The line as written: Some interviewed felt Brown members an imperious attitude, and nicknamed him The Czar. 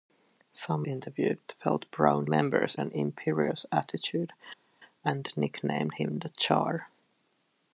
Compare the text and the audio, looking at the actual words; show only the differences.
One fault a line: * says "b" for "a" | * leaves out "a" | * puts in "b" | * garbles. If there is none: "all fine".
all fine